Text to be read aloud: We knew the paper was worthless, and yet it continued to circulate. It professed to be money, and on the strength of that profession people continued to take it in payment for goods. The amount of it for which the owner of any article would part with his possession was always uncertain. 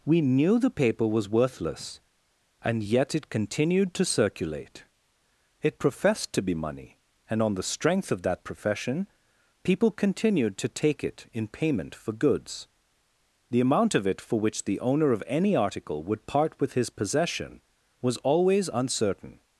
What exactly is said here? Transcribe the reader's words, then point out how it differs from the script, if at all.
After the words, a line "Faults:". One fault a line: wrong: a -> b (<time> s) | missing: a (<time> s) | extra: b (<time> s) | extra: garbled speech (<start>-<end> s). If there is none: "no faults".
We knew the paper was worthless, and yet it continued to circulate. It professed to be money, and on the strength of that profession people continued to take it in payment for goods. The amount of it for which the owner of any article would part with his possession was always uncertain.
Faults:
no faults